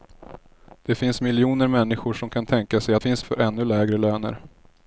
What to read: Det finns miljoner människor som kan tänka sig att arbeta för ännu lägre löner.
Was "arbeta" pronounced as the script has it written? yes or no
no